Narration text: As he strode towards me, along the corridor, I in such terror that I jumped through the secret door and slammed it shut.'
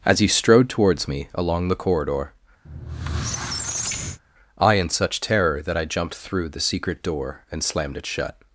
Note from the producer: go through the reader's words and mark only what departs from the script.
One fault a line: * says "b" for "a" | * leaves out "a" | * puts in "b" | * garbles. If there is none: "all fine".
all fine